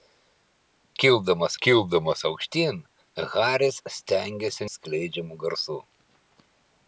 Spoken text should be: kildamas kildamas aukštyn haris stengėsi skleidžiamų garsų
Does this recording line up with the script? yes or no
yes